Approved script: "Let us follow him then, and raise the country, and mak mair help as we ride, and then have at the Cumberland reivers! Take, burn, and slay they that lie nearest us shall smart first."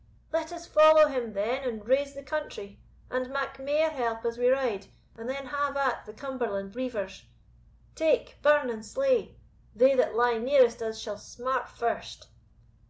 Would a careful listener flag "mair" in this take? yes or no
no